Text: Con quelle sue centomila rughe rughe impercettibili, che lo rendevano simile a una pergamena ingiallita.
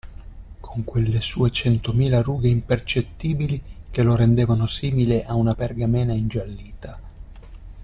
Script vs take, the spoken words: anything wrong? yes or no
yes